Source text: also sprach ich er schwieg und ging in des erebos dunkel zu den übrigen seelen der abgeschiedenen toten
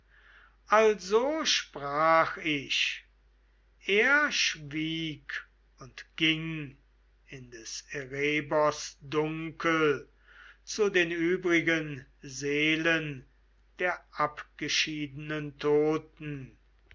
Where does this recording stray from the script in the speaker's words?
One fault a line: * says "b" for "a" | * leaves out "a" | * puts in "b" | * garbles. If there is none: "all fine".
all fine